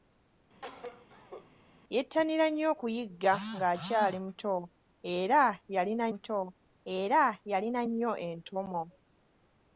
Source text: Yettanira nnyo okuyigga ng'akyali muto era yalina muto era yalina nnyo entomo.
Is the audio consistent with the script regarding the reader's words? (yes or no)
yes